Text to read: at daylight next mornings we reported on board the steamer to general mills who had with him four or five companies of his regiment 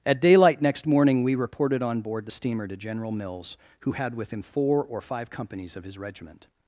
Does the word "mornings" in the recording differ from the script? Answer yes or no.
yes